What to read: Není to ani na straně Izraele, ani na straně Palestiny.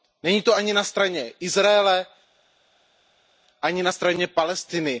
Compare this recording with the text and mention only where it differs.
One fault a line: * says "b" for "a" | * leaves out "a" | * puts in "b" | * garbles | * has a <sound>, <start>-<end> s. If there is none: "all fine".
all fine